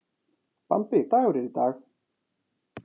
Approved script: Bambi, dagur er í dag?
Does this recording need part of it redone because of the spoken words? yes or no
no